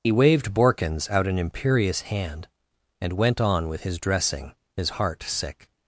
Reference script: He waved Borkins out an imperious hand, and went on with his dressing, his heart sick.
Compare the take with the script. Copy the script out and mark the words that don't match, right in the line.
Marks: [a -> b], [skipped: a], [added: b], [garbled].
He waved Borkins out an imperious hand, and went on with his dressing, his heart sick.